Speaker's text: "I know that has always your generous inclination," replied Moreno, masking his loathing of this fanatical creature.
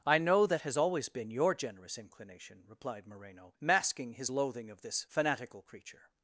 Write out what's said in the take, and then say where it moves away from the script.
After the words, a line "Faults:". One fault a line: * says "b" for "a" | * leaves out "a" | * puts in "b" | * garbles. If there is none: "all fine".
"I know that has always been your generous inclination," replied Moreno, masking his loathing of this fanatical creature.
Faults:
* puts in "been"